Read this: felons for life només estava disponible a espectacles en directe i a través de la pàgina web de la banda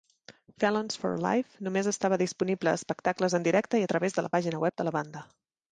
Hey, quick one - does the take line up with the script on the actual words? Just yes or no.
yes